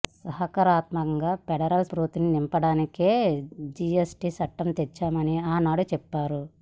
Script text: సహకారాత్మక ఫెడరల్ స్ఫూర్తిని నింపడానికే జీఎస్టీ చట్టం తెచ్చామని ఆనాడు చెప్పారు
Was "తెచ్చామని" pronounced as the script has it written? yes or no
yes